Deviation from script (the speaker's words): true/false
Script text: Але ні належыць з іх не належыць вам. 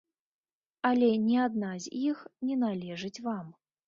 true